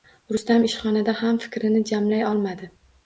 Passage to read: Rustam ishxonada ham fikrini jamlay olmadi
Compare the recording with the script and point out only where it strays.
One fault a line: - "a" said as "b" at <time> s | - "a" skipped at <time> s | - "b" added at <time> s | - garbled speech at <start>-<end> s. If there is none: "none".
none